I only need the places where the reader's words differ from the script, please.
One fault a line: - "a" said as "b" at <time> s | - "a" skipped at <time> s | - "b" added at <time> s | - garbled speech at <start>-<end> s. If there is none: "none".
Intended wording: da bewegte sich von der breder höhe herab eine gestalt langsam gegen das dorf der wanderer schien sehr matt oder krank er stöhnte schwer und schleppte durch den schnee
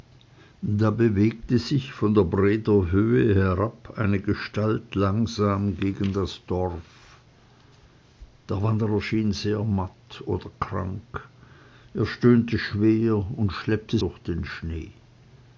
none